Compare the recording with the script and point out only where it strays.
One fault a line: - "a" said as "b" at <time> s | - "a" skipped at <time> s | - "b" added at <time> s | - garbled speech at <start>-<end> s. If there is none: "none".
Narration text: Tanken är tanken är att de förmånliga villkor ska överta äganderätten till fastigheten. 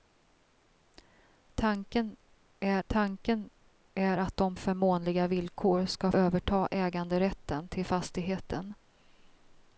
none